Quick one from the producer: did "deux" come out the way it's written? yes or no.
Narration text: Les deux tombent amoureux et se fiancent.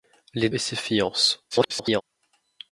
no